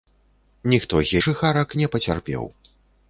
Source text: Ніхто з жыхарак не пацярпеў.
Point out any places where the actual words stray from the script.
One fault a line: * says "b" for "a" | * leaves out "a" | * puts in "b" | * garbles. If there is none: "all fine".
all fine